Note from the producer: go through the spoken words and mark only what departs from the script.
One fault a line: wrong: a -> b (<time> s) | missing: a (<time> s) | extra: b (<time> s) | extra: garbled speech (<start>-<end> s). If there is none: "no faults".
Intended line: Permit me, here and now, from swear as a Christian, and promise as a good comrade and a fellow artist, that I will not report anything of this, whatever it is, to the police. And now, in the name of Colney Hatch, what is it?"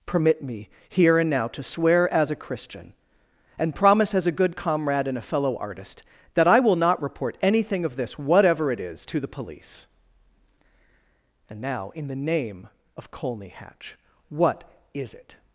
wrong: from -> to (1.5 s)